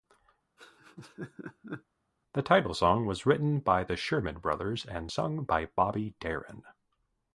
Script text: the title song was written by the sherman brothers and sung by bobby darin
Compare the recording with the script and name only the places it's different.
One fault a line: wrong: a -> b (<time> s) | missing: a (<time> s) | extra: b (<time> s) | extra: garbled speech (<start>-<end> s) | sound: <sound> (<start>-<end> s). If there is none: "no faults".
sound: laugh (0.6-1.8 s)